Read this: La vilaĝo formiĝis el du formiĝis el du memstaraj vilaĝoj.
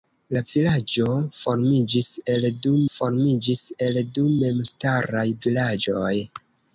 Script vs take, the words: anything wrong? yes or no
no